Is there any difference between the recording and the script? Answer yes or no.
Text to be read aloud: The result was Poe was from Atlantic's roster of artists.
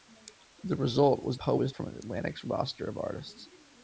no